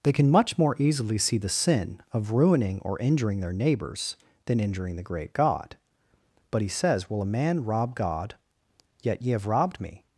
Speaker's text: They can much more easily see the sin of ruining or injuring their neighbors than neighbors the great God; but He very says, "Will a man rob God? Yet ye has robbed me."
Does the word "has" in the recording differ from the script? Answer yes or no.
yes